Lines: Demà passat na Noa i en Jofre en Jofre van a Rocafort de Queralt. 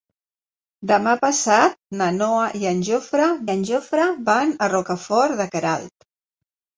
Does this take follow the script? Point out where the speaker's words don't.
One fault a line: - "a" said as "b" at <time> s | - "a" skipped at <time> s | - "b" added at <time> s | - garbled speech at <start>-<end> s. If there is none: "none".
none